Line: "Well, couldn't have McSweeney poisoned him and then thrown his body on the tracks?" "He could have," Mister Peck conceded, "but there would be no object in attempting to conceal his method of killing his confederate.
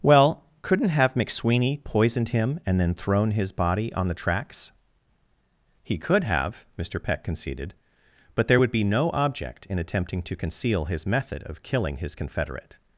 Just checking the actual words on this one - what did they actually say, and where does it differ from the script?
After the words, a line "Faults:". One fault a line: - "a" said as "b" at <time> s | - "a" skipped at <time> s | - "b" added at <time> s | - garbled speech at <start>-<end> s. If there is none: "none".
"Well, couldn't have McSweeney poisoned him and then thrown his body on the tracks?" "He could have," Mister Peck conceded, "but there would be no object in attempting to conceal his method of killing his confederate.
Faults:
none